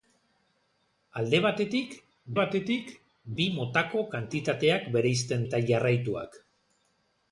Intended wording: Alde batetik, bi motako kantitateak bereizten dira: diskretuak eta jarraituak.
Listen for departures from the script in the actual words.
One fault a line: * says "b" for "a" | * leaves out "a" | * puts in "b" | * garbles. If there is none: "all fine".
* puts in "batetik"
* leaves out "dira diskretuak"